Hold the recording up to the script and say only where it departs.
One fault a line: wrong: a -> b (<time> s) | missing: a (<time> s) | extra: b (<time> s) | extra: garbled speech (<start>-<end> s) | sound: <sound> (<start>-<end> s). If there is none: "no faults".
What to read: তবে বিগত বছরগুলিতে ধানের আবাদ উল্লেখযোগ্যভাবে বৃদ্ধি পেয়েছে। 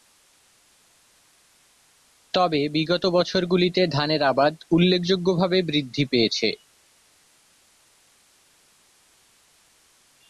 no faults